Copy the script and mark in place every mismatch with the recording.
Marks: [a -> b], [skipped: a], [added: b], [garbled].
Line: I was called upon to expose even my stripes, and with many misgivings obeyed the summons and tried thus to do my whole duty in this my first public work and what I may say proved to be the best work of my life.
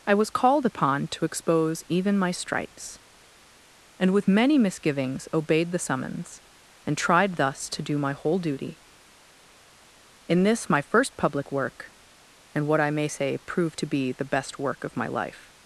I was called upon to expose even my stripes, and with many misgivings obeyed the summons and tried thus to do my whole duty in this my first public work and what I may say proved to be the best work of my life.